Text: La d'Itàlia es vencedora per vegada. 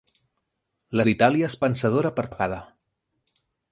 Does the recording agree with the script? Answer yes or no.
yes